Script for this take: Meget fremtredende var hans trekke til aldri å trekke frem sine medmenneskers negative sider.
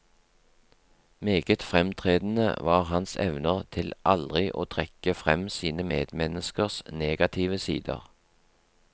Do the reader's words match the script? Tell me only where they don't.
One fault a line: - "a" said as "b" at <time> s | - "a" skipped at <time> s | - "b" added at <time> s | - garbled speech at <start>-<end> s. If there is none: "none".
- "trekke" said as "evner" at 3.1 s